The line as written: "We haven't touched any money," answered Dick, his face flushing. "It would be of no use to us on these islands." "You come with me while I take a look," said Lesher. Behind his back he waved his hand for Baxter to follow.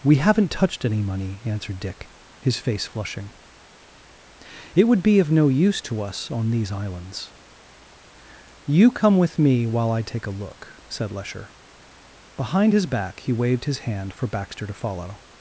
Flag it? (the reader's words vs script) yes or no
no